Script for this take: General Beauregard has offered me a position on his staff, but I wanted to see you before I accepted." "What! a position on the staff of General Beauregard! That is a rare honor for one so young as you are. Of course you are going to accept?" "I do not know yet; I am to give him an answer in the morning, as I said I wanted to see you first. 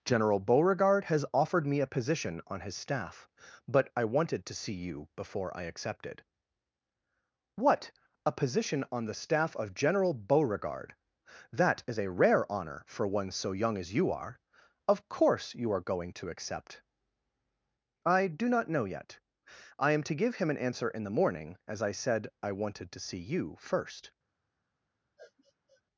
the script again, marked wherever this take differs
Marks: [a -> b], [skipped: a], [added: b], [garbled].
General Beauregard has offered me a position on his staff, but I wanted to see you before I accepted." "What! a position on the staff of General Beauregard! That is a rare honor for one so young as you are. Of course you are going to accept?" "I do not know yet; I am to give him an answer in the morning, as I said I wanted to see you first.